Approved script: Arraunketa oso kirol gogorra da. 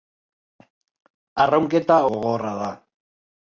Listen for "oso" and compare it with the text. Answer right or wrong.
wrong